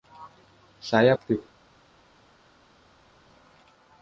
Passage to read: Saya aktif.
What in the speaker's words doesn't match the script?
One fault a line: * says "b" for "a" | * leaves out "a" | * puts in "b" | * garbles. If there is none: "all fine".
all fine